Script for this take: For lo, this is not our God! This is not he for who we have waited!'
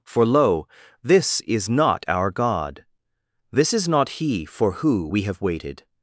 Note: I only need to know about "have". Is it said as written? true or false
true